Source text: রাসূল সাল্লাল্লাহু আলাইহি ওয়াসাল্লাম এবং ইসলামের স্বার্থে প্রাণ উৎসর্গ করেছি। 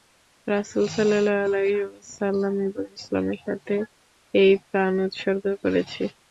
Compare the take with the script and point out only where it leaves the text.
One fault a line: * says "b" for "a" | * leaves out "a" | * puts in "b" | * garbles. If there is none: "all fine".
* puts in "এই"